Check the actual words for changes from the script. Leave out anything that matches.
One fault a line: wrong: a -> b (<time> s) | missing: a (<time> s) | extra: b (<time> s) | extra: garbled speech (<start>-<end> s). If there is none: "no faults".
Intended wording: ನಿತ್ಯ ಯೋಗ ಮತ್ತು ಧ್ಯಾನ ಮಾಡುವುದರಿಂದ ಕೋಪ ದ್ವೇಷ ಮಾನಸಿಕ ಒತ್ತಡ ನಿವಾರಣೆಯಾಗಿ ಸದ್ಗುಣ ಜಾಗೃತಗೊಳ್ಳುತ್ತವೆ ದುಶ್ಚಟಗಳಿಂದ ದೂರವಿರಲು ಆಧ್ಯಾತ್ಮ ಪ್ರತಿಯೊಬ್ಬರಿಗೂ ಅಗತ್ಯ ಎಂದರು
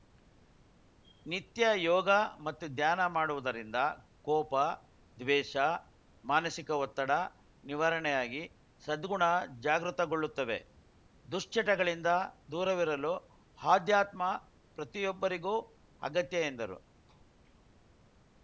no faults